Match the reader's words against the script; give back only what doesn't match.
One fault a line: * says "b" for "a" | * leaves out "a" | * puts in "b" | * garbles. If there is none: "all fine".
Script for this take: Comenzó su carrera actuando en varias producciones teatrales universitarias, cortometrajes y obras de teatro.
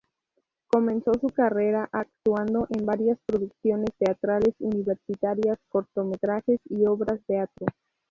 * leaves out "de"